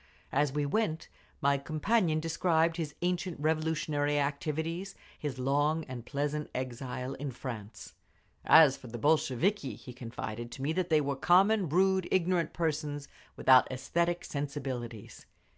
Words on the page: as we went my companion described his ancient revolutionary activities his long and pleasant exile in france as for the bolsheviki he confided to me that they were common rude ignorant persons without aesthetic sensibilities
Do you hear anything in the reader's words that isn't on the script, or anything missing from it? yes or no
no